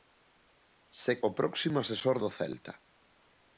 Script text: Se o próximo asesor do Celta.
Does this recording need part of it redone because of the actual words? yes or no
no